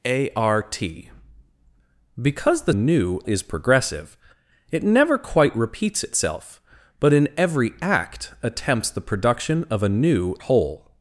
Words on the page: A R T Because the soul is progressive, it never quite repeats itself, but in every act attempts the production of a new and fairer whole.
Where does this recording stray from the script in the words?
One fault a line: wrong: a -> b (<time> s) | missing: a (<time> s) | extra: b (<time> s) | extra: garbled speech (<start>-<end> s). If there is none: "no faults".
wrong: soul -> new (2.7 s)
missing: and fairer (10.4 s)